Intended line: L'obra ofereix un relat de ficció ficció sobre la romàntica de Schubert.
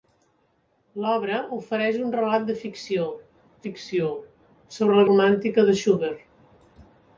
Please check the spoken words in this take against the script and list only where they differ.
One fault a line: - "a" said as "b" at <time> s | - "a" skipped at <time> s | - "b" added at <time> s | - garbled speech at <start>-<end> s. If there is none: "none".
none